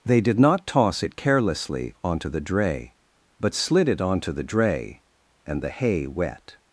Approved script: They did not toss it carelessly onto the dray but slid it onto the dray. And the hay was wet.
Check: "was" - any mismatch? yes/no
yes